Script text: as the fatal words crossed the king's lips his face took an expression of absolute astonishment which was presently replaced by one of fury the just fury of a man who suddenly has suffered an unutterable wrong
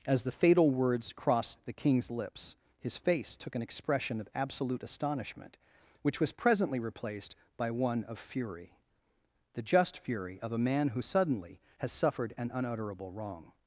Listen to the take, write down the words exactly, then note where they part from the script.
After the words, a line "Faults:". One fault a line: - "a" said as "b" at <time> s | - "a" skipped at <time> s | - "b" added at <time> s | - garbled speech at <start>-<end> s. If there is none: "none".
as the fatal words crossed the king's lips his face took an expression of absolute astonishment which was presently replaced by one of fury the just fury of a man who suddenly has suffered an unutterable wrong
Faults:
none